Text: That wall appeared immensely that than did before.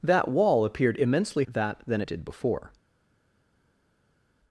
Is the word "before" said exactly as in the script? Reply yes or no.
yes